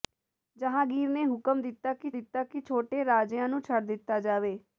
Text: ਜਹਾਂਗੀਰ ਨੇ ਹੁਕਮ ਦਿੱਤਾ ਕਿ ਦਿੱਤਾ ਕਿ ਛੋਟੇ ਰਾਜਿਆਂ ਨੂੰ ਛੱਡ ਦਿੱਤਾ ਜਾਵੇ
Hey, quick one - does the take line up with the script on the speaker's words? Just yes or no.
yes